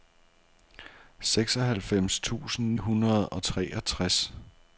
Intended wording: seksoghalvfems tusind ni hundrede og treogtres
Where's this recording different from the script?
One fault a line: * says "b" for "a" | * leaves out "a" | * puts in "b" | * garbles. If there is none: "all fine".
* leaves out "ni"